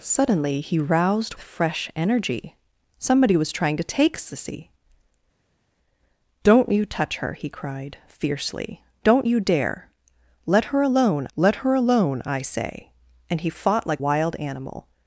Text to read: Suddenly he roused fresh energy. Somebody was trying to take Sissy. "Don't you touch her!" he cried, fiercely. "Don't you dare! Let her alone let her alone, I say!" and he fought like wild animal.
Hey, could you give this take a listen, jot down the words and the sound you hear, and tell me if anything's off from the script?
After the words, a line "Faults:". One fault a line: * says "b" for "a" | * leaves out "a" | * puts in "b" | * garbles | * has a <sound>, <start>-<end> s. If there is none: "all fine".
Suddenly he roused fresh energy. Somebody was trying to take Sissy. "Don't you touch her!" he cried, fiercely. "Don't you dare! Let her alone let her alone, I say!" and he fought like wild animal.
Faults:
all fine